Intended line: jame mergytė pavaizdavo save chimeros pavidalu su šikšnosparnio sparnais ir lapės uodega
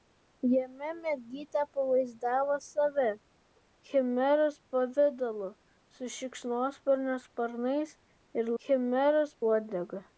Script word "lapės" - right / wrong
wrong